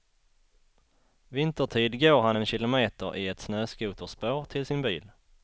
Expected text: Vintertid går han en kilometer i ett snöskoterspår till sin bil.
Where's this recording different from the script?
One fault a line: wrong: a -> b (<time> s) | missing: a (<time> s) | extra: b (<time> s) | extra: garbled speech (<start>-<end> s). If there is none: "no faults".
no faults